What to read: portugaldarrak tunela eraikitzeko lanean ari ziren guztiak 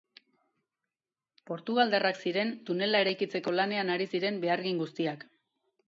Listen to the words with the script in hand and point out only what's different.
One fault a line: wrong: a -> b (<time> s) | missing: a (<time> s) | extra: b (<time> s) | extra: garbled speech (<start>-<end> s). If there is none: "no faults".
extra: ziren (2.2 s)
extra: behargin (4.4 s)